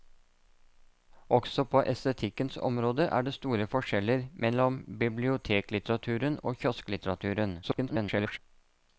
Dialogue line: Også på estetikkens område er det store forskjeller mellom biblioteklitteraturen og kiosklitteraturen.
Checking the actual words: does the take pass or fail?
fail